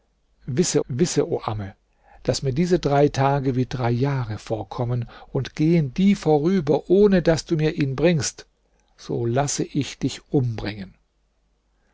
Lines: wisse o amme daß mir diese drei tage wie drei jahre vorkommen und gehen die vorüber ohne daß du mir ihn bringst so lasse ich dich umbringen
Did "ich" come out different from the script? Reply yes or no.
no